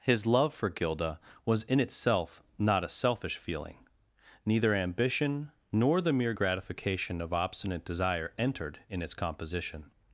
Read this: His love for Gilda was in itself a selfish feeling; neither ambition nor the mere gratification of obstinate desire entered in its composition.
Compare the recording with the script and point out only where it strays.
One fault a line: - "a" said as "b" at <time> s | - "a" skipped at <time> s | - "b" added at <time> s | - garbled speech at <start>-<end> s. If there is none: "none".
- "not" added at 2.6 s